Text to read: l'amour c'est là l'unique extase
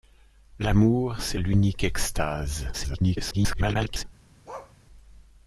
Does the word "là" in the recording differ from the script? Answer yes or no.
yes